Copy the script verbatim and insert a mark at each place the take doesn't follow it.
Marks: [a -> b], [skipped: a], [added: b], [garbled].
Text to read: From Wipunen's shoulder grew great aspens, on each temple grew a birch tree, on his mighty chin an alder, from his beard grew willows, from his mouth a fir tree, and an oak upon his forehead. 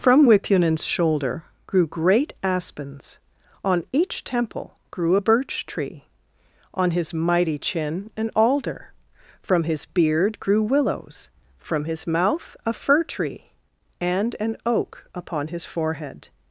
From Wipunen's shoulder grew great aspens, on each temple grew a birch tree, on his mighty chin an alder, from his beard grew willows, from his mouth a fir tree, and an oak upon his forehead.